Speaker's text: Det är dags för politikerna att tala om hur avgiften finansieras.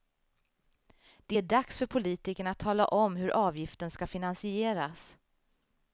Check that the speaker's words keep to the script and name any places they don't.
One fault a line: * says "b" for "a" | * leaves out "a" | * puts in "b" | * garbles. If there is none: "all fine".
* puts in "ska"